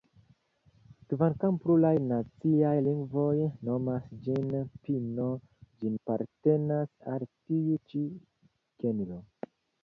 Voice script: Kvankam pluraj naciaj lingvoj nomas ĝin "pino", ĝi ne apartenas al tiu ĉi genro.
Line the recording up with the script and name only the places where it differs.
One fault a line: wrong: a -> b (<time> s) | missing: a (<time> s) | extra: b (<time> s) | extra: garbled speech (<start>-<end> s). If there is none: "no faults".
missing: ne (6.0 s)